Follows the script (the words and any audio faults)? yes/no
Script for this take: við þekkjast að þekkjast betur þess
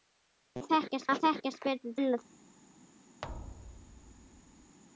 no